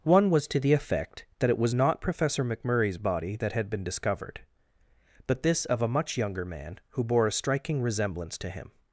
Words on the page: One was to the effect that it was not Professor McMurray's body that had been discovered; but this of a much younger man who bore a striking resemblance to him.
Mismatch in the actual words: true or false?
false